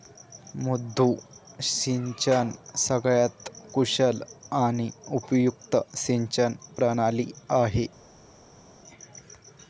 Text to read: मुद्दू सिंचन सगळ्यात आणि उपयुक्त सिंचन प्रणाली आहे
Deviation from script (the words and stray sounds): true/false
true